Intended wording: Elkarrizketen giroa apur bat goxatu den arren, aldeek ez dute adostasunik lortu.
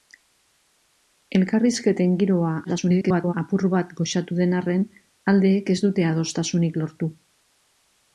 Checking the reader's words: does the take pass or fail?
fail